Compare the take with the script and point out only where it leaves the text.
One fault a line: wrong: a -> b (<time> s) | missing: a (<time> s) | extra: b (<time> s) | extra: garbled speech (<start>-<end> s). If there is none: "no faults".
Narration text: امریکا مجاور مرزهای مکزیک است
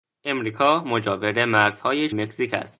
no faults